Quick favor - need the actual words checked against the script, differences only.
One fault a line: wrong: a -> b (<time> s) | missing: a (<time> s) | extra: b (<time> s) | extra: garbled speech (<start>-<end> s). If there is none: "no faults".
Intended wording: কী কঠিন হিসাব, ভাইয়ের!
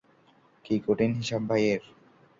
no faults